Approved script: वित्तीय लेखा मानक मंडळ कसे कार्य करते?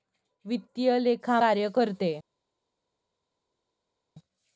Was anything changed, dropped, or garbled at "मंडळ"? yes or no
yes